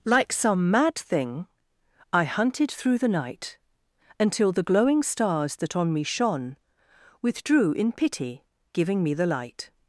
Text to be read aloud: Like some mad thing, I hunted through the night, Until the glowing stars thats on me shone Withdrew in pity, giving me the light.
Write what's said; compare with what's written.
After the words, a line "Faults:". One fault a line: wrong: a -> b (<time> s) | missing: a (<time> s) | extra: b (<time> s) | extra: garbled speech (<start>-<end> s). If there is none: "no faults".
Like some mad thing, I hunted through the night, Until the glowing stars that on me shone Withdrew in pity, giving me the light.
Faults:
wrong: thats -> that (5.6 s)